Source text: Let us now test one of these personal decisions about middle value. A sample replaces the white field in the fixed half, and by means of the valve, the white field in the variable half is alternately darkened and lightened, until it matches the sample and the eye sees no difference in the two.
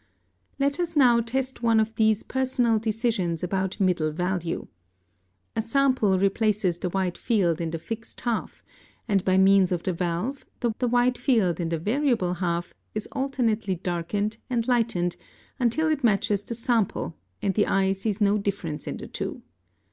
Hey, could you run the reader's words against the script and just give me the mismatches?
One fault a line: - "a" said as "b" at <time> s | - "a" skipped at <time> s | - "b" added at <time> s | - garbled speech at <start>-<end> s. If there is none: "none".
- "the" added at 10.8 s